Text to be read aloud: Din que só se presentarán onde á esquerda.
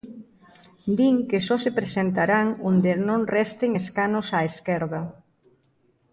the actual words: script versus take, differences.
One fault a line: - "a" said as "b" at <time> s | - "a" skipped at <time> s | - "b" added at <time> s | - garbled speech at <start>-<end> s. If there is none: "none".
- "non resten escanos" added at 3.1 s